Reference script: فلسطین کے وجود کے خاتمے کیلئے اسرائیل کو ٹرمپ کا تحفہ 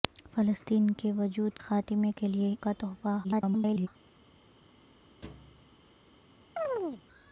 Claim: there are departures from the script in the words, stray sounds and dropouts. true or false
true